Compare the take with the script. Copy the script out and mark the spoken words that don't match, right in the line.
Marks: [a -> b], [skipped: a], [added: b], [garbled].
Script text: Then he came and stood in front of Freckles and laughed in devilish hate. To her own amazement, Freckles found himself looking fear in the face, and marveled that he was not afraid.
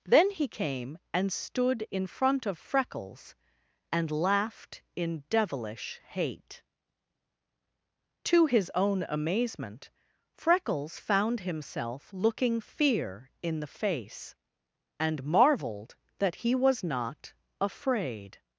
Then he came and stood in front of Freckles and laughed in devilish hate. To [her -> his] own amazement, Freckles found himself looking fear in the face, and marveled that he was not afraid.